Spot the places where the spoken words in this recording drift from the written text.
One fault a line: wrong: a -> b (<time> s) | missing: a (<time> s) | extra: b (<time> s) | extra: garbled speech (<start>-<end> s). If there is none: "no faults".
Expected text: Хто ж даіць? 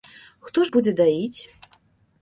extra: будзе (0.8 s)